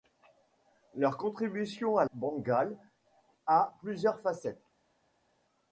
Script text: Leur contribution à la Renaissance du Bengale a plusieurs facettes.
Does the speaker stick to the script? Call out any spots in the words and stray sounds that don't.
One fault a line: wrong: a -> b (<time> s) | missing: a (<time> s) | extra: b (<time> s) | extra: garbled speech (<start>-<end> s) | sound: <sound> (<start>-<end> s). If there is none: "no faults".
missing: la Renaissance du (2.0 s)